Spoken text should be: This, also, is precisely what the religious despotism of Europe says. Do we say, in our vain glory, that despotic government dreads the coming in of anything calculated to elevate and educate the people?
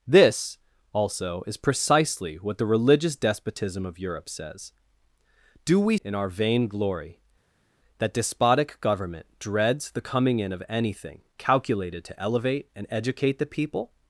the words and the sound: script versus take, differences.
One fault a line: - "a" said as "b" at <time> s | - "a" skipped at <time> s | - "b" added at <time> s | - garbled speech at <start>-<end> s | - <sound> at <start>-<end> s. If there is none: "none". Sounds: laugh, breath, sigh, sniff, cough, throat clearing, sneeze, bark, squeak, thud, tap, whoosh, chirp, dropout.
- "say" skipped at 6.0 s